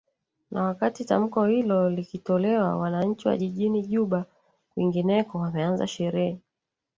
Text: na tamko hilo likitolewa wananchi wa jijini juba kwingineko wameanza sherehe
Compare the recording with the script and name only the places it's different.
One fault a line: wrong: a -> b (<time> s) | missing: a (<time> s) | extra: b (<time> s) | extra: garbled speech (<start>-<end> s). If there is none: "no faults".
extra: wakati (0.6 s)